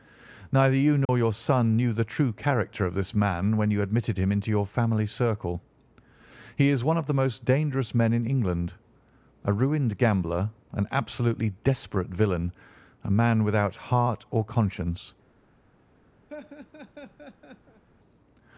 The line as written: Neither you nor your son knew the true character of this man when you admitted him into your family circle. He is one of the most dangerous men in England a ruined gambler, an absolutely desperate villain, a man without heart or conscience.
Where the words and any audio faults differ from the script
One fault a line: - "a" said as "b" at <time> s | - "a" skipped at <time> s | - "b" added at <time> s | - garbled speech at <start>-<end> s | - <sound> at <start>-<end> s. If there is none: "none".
- dropout at 1.1-1.1 s
- laugh at 16.3-17.8 s